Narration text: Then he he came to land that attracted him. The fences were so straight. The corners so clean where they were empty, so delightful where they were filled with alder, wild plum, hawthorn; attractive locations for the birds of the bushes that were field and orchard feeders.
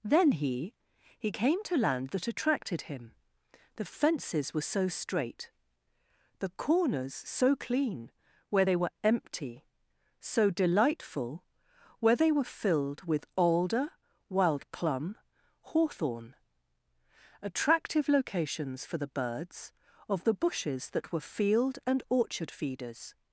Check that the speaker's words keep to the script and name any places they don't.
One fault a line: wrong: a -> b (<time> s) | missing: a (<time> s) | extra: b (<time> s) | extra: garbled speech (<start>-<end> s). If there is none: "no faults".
no faults